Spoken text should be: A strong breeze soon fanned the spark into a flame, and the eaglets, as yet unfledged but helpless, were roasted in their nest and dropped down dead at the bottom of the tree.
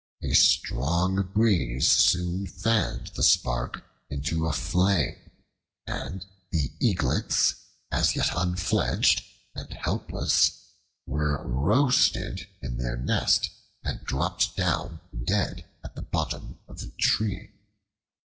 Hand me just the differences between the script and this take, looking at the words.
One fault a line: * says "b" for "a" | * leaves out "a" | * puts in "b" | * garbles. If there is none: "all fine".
* says "and" for "but"